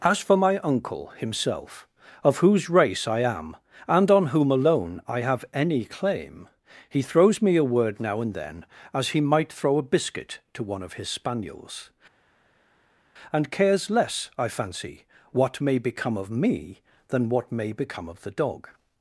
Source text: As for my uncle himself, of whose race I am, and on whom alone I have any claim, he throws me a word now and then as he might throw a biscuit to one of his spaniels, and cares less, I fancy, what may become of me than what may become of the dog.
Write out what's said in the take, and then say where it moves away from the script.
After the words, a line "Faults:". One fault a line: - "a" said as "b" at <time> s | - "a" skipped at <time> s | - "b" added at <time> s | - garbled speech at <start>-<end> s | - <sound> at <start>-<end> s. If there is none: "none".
As for my uncle himself, of whose race I am, and on whom alone I have any claim, he throws me a word now and then as he might throw a biscuit to one of his spaniels, and cares less, I fancy, what may become of me than what may become of the dog.
Faults:
none